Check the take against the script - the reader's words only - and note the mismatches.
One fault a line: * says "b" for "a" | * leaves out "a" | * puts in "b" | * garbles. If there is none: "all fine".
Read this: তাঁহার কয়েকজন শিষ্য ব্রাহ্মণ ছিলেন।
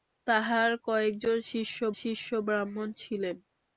* puts in "শিষ্য"